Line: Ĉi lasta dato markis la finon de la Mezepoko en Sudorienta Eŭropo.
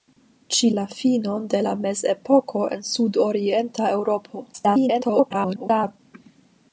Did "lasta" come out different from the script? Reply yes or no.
yes